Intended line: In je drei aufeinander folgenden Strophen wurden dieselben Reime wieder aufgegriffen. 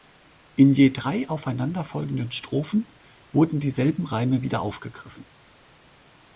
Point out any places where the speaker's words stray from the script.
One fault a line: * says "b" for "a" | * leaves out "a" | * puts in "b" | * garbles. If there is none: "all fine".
all fine